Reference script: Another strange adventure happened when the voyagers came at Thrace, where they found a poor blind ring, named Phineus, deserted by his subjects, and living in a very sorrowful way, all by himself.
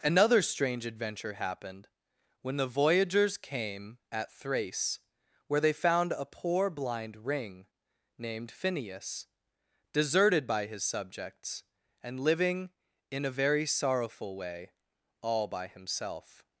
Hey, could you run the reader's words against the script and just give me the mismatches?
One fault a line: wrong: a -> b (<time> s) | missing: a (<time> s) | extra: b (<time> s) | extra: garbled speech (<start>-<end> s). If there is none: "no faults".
no faults